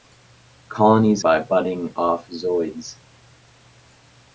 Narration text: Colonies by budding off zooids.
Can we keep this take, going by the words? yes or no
yes